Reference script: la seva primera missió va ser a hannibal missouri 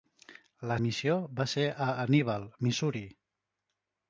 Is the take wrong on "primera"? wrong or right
wrong